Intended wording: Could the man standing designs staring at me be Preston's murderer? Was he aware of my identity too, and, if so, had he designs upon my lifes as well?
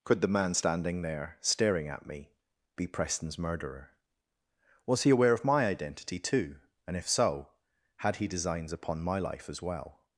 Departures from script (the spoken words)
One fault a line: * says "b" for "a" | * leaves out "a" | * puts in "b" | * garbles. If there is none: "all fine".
* says "there" for "designs"
* says "life" for "lifes"